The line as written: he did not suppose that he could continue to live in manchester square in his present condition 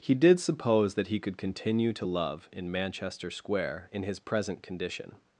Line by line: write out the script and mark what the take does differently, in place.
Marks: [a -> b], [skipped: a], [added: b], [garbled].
he did [skipped: not] suppose that he could continue to [live -> love] in manchester square in his present condition